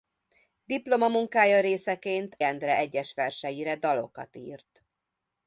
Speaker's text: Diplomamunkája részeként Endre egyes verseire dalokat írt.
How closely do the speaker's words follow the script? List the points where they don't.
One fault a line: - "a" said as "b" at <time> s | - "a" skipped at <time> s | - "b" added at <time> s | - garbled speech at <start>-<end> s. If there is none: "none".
none